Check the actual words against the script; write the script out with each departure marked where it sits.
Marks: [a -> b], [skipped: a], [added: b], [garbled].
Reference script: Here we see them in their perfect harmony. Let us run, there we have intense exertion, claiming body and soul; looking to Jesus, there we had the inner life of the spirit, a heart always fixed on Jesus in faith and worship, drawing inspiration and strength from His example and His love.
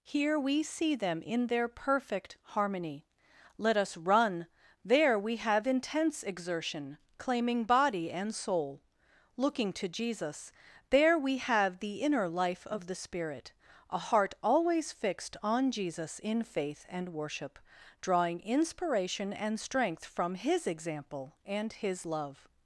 Here we see them in their perfect harmony. Let us run, there we have intense exertion, claiming body and soul; looking to Jesus, there we [had -> have] the inner life of the spirit, a heart always fixed on Jesus in faith and worship, drawing inspiration and strength from His example and His love.